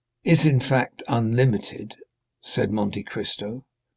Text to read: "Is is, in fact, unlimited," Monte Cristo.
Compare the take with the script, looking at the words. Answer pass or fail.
fail